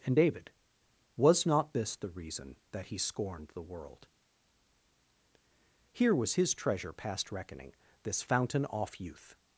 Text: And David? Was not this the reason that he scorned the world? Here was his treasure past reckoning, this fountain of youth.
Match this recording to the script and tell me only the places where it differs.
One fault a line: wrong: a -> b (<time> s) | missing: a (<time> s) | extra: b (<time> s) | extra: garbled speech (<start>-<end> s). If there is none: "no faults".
wrong: of -> off (8.7 s)